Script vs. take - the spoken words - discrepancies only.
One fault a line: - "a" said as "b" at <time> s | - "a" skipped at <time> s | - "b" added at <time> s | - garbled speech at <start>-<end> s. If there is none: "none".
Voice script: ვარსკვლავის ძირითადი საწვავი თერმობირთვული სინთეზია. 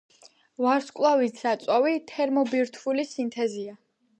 - "ძირითადი" skipped at 1.4 s